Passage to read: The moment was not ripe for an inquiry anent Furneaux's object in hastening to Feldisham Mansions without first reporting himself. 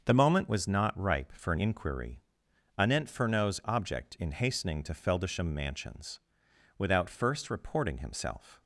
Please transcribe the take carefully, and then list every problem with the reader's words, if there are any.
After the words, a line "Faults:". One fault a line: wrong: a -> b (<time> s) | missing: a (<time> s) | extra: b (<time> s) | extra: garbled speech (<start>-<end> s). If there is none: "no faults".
The moment was not ripe for an inquiry anent Furneaux's object in hastening to Feldisham Mansions without first reporting himself.
Faults:
no faults